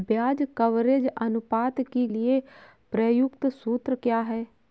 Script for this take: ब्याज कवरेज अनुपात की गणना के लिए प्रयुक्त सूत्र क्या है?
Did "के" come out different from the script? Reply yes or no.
yes